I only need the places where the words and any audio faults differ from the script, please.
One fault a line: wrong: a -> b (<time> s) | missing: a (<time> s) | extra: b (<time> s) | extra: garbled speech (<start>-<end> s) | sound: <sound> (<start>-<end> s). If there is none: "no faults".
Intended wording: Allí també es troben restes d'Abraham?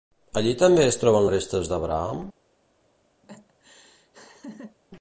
sound: laugh (3.2-4.8 s)